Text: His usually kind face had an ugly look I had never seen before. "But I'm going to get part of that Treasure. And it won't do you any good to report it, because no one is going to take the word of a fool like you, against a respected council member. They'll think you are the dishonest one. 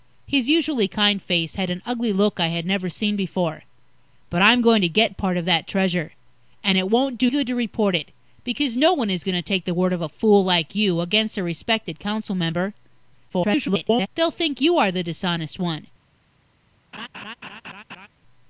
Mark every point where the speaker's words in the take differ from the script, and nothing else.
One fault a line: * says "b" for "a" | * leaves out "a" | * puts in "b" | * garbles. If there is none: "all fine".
* leaves out "you any"
* garbles